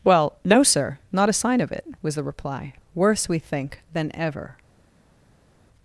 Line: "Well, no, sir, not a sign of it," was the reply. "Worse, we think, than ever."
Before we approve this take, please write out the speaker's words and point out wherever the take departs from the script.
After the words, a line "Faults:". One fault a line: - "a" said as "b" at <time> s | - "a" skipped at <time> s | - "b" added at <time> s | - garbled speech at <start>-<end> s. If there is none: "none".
"Well, no, sir, not a sign of it," was the reply. "Worse, we think, than ever."
Faults:
none